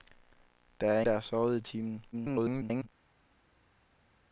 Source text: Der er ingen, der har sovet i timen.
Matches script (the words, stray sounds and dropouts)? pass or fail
fail